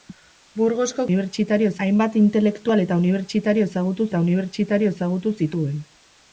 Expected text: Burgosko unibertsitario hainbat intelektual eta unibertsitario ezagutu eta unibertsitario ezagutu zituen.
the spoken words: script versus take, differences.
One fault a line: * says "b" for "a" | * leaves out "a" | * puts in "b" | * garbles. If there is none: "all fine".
all fine